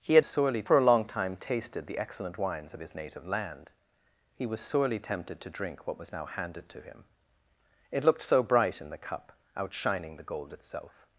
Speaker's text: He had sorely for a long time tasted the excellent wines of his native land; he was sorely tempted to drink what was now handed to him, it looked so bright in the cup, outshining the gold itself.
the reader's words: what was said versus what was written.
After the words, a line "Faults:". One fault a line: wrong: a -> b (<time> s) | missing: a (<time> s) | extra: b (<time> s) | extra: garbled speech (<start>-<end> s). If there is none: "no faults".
He had sorely for a long time tasted the excellent wines of his native land; he was sorely tempted to drink what was now handed to him, it looked so bright in the cup, outshining the gold itself.
Faults:
no faults